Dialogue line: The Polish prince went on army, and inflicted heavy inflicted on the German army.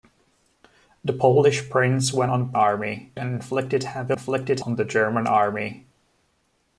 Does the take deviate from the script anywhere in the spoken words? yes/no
no